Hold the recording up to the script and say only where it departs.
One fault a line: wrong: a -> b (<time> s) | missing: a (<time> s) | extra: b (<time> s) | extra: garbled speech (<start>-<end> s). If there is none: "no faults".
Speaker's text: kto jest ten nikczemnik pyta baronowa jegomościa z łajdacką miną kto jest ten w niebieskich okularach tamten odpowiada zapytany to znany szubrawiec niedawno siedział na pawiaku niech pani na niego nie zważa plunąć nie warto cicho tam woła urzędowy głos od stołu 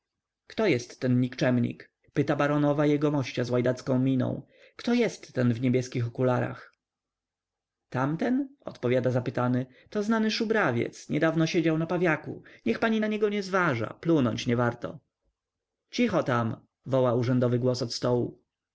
no faults